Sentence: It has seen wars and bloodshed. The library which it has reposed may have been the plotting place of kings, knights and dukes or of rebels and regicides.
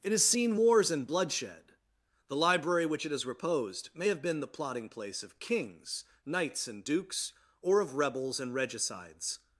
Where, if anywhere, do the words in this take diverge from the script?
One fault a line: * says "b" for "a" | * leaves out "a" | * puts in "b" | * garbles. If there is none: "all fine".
all fine